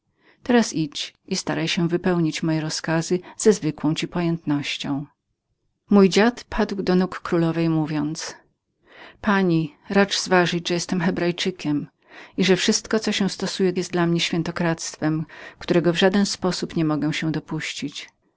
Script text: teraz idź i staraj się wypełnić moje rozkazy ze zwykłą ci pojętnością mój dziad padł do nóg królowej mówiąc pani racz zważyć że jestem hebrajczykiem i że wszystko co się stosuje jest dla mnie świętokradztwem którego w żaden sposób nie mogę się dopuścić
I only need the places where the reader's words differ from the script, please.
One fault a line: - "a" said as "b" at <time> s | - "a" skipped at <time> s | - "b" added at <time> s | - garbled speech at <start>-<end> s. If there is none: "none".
none